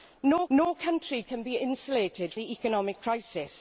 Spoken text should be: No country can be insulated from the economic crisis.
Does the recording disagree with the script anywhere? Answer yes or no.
yes